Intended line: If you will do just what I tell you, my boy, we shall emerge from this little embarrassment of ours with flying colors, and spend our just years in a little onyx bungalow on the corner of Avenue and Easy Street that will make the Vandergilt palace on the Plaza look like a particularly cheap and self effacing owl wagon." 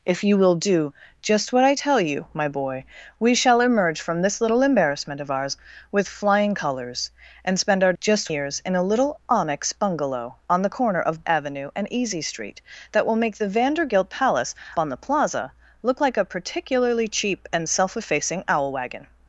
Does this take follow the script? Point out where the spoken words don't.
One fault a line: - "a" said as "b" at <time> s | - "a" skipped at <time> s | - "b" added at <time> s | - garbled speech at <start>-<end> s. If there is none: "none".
none